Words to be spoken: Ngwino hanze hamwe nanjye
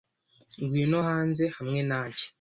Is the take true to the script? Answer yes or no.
yes